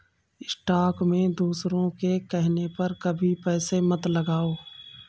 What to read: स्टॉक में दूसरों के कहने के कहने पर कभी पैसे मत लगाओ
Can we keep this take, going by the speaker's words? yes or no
no